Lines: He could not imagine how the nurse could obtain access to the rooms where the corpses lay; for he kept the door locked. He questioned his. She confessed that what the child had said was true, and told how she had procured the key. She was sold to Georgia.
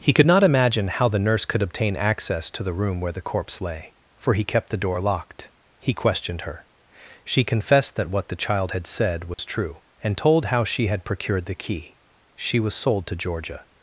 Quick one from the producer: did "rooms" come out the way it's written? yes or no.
no